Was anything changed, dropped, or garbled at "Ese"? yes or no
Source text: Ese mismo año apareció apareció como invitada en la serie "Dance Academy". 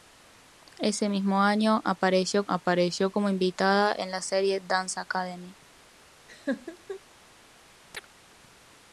no